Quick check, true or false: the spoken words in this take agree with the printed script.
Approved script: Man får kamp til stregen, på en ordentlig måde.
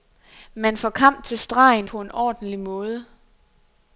true